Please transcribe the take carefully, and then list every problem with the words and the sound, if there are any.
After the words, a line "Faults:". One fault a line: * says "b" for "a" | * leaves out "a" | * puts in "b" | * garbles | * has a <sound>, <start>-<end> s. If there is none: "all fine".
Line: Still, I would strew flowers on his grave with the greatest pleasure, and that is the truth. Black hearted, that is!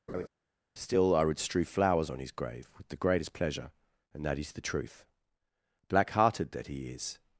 Still, I would strew flowers on his grave with the greatest pleasure, and that is the truth. Black hearted, that he is!
Faults:
* has a laugh, 0.1-0.3 s
* puts in "he"